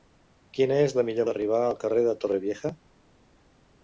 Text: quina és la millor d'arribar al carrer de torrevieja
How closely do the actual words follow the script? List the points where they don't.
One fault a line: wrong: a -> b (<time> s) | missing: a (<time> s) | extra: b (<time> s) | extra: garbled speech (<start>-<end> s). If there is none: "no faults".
no faults